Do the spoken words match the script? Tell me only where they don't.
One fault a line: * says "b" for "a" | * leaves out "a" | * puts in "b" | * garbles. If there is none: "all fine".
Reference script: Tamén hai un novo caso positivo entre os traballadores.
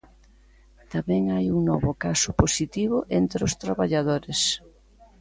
all fine